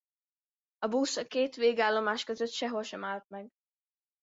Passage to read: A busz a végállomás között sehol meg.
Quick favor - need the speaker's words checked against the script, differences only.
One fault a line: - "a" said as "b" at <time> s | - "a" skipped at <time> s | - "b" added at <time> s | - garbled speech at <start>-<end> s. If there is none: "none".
- "két" added at 1.2 s
- "sem állt" added at 2.8 s